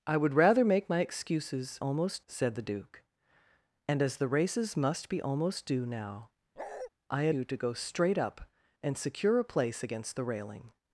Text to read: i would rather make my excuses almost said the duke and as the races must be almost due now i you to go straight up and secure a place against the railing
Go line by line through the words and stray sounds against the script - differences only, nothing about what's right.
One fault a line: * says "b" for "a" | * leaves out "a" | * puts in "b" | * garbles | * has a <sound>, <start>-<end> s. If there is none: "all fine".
* has a bark, 6.6-6.9 s